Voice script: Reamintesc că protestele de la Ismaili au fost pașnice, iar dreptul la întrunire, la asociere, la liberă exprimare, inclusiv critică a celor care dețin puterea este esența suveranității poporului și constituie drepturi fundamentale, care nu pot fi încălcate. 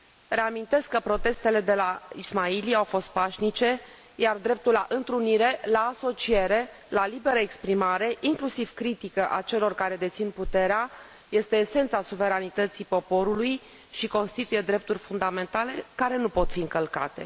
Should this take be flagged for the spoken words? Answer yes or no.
no